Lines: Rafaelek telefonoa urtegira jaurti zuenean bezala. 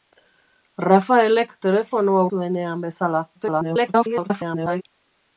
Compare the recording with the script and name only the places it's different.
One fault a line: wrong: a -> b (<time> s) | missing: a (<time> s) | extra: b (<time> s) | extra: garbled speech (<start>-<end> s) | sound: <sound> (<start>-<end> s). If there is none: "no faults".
missing: urtegira jaurti (2.2 s)
extra: garbled speech (3.3-4.8 s)